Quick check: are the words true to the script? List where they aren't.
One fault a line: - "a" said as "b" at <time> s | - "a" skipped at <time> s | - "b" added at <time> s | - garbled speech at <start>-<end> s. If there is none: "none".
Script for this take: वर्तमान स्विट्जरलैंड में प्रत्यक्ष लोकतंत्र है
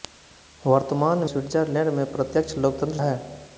none